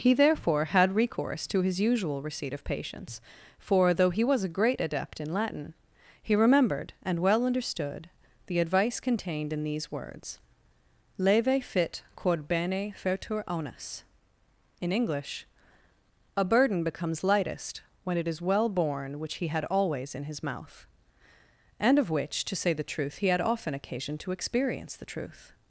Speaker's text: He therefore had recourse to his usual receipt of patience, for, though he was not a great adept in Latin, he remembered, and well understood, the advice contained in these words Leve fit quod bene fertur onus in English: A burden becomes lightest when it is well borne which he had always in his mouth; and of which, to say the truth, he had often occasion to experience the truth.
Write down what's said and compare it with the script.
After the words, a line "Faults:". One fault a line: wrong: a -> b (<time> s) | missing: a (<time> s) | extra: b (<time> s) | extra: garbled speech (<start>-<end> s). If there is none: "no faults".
He therefore had recourse to his usual receipt of patience, for, though he was a great adept in Latin, he remembered, and well understood, the advice contained in these words Leve fit quod bene fertur onus in English: A burden becomes lightest when it is well borne which he had always in his mouth; and of which, to say the truth, he had often occasion to experience the truth.
Faults:
missing: not (4.4 s)